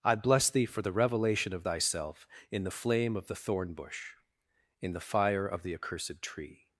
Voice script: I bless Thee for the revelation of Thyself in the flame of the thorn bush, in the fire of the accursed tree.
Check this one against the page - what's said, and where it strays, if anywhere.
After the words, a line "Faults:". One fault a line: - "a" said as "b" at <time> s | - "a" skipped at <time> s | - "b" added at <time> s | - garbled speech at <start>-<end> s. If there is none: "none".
I bless Thee for the revelation of Thyself in the flame of the thorn bush, in the fire of the accursed tree.
Faults:
none